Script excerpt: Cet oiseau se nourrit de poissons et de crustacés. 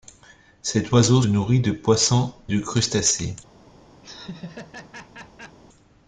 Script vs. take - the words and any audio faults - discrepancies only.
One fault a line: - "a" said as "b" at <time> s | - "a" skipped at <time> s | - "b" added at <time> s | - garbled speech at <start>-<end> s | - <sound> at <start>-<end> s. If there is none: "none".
- "se" skipped at 1.2 s
- "et" skipped at 2.3 s
- laugh at 4.0-5.6 s